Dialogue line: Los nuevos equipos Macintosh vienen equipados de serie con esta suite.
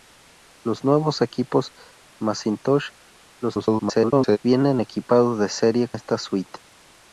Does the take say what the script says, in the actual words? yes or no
no